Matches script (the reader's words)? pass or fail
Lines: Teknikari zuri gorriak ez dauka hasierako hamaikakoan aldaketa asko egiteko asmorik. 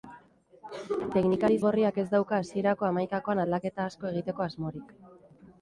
fail